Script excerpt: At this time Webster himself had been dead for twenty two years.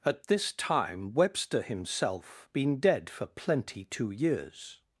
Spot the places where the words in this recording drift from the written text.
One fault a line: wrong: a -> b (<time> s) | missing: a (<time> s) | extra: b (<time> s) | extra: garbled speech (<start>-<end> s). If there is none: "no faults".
missing: had (2.5 s)
wrong: twenty -> plenty (3.3 s)